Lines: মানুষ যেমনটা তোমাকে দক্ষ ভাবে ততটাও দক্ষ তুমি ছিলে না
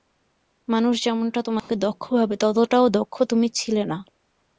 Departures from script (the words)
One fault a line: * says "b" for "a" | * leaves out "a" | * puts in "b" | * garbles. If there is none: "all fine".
all fine